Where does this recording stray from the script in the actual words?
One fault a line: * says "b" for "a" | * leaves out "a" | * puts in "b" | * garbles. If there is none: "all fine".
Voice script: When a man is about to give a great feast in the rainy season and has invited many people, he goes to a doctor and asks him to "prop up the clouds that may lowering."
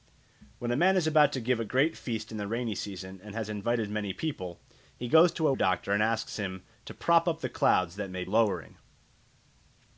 all fine